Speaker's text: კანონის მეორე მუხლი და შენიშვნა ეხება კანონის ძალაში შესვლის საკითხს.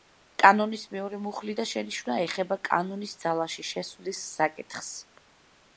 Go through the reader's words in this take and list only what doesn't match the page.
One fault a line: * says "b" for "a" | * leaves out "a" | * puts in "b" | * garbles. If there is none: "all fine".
all fine